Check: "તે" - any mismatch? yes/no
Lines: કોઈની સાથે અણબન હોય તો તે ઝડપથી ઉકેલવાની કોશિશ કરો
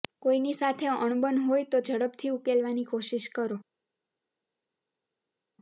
yes